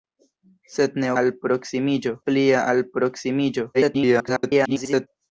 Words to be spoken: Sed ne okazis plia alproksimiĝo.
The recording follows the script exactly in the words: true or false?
false